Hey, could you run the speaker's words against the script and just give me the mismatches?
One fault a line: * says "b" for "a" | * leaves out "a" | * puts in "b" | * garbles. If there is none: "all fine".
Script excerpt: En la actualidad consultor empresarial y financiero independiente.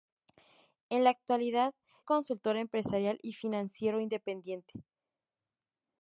all fine